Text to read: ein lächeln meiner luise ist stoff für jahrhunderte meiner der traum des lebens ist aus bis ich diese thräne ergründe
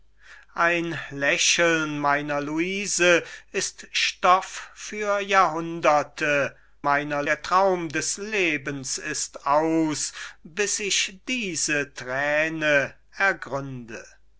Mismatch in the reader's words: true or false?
false